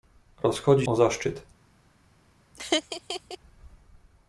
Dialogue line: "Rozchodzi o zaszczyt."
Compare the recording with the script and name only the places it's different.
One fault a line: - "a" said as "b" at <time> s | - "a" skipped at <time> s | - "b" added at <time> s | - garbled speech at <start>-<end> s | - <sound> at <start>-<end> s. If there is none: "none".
- laugh at 2.5-3.4 s